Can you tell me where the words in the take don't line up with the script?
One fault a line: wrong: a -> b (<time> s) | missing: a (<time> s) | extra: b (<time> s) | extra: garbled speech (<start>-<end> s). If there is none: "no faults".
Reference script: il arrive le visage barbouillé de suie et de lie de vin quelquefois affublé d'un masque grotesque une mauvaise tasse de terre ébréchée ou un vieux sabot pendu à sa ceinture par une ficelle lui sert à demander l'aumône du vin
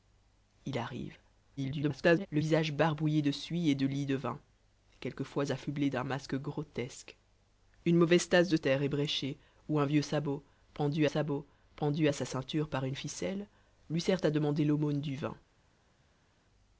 extra: garbled speech (1.6-2.3 s)
extra: sabot pendu (11.0 s)